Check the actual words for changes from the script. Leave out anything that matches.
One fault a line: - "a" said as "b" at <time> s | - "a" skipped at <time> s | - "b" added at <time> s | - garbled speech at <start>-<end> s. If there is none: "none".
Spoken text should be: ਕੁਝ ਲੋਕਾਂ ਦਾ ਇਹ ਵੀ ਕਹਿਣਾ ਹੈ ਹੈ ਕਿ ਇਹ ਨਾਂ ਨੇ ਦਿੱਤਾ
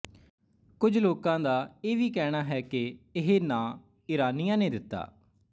- "ਹੈ" skipped at 2.6 s
- "ਈਰਾਨੀਆਂ" added at 4.1 s